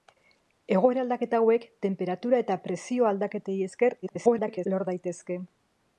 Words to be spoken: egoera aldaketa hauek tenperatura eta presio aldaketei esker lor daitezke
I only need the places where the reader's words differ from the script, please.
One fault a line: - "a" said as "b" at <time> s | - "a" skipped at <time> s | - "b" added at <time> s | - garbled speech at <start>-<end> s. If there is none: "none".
- garbled speech at 4.0-4.7 s